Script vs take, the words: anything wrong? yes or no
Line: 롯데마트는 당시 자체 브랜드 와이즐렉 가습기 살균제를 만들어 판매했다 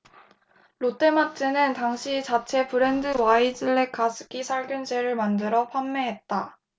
no